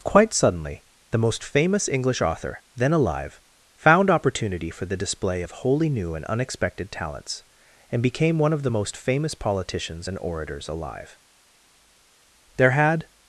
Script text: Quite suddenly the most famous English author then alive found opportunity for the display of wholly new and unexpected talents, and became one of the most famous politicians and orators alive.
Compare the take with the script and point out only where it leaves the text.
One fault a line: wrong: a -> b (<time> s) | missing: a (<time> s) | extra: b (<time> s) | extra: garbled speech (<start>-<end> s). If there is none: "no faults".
extra: There had (12.6 s)